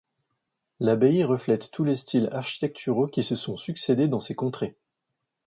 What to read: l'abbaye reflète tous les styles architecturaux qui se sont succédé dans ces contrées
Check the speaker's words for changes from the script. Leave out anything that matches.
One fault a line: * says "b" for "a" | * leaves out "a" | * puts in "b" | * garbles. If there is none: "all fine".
all fine